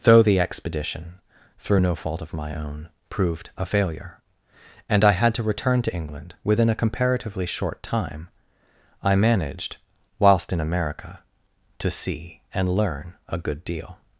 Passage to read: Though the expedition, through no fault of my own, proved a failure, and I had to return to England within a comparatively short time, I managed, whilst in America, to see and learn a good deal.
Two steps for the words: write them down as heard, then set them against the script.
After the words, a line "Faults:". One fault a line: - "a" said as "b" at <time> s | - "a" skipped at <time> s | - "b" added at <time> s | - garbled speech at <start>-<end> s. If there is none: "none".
Though the expedition, through no fault of my own, proved a failure, and I had to return to England within a comparatively short time, I managed, whilst in America, to see and learn a good deal.
Faults:
none